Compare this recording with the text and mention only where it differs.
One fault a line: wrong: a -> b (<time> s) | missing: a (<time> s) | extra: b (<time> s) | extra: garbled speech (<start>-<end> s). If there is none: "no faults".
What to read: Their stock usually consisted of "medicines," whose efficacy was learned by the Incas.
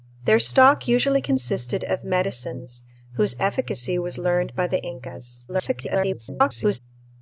extra: garbled speech (5.5-6.8 s)